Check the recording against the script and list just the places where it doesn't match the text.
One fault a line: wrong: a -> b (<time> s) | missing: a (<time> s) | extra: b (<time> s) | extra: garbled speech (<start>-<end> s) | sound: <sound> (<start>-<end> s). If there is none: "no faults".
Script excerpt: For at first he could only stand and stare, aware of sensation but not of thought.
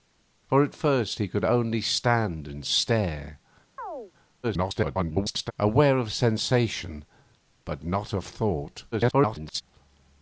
sound: chirp (3.8-4.1 s)
extra: garbled speech (4.4-5.5 s)
extra: garbled speech (8.9-9.6 s)